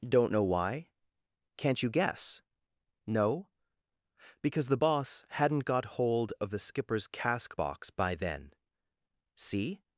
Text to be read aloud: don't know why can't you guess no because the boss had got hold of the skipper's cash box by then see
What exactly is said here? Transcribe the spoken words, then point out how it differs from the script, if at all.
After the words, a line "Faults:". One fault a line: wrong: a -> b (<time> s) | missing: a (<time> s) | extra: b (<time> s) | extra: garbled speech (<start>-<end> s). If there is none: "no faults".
don't know why can't you guess no because the boss hadn't got hold of the skipper's cask box by then see
Faults:
wrong: had -> hadn't (5.3 s)
wrong: cash -> cask (7.1 s)